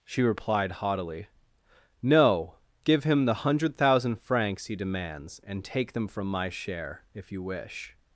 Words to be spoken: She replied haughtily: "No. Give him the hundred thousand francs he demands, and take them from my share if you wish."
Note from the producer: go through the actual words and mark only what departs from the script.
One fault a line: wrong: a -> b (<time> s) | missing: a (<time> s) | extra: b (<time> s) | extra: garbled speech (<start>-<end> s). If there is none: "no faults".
no faults